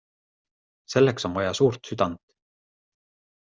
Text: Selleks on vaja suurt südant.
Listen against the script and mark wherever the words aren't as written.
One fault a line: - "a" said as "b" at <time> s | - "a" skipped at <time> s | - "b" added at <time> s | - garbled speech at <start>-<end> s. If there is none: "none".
none